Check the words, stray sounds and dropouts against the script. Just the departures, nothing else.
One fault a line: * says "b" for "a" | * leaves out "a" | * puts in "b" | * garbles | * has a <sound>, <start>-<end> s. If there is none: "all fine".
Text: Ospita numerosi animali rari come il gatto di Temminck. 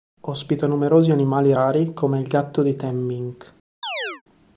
* has a chirp, 3.8-4.2 s